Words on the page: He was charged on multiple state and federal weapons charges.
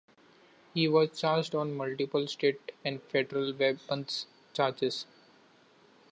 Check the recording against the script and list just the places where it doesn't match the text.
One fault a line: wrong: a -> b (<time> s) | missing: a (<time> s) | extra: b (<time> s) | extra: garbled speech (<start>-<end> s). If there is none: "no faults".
no faults